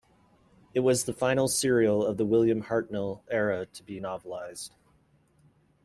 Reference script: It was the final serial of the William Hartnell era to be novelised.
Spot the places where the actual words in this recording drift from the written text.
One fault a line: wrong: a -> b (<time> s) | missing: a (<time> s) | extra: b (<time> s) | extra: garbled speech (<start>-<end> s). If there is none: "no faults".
no faults